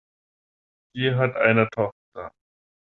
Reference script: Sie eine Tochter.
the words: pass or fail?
fail